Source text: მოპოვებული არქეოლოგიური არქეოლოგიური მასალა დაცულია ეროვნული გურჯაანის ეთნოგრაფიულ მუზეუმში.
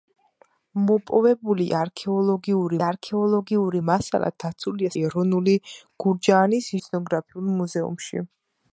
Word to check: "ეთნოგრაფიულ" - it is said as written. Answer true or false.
true